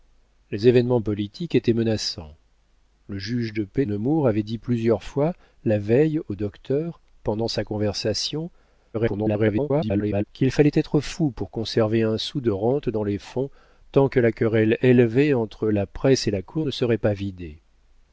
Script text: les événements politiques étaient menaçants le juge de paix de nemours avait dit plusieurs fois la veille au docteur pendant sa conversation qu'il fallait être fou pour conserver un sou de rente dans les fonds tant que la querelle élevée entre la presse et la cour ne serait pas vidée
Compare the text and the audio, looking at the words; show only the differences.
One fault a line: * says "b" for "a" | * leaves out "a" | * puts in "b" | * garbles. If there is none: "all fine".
* leaves out "de"
* garbles